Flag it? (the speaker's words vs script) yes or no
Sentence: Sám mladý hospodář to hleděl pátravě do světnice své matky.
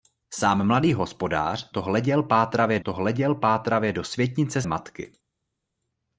yes